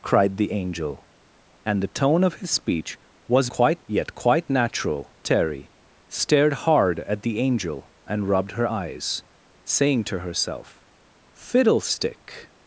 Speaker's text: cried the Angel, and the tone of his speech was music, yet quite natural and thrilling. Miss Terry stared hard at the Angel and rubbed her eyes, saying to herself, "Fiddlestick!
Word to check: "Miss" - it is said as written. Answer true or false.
false